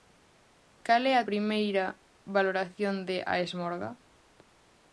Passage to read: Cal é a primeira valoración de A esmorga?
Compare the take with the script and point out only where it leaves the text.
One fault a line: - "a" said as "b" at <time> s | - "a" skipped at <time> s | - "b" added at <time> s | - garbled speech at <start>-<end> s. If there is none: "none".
none